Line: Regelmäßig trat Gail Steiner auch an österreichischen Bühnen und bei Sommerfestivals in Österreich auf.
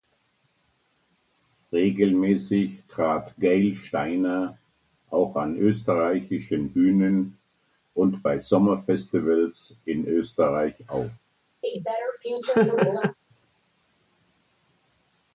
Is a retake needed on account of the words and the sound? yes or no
yes